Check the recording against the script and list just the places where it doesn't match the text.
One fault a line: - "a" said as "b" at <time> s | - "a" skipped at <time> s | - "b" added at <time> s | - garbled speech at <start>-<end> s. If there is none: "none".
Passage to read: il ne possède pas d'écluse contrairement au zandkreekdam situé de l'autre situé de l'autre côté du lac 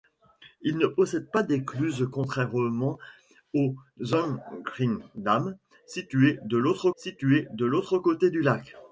none